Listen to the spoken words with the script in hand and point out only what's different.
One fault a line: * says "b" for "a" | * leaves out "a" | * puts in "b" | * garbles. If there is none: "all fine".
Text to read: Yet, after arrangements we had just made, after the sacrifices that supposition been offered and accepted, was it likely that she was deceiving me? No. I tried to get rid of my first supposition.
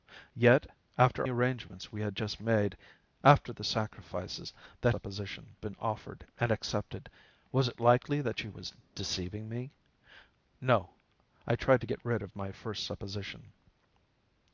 all fine